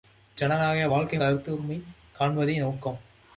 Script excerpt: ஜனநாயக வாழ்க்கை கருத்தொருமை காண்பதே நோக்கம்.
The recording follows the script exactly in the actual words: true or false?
true